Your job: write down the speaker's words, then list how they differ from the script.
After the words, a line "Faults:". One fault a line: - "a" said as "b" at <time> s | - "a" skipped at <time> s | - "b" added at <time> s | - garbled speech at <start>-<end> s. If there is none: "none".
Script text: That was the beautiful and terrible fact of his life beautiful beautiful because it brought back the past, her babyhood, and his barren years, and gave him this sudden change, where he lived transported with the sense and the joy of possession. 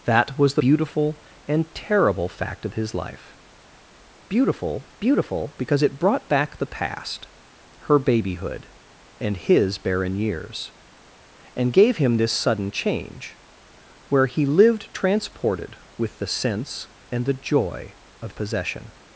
That was the beautiful and terrible fact of his life beautiful beautiful because it brought back the past, her babyhood, and his barren years, and gave him this sudden change, where he lived transported with the sense and the joy of possession.
Faults:
none